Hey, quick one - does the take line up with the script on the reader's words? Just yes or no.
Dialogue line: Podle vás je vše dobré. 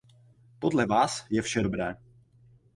yes